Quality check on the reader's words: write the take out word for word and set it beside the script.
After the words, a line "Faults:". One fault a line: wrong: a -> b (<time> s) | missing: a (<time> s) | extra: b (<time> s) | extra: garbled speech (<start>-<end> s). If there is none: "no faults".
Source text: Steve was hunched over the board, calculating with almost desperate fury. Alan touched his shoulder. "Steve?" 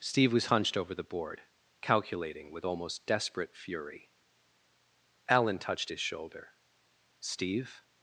Steve was hunched over the board, calculating with almost desperate fury. Alan touched his shoulder. "Steve?"
Faults:
no faults